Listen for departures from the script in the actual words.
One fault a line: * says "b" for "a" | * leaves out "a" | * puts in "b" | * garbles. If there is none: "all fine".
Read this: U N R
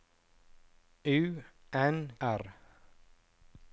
all fine